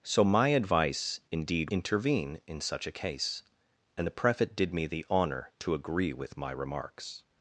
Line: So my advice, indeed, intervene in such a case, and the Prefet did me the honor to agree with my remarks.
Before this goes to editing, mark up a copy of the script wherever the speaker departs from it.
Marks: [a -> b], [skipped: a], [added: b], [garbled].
So my advice, indeed, intervene in such a case, and the Prefet did me the honor to agree with my remarks.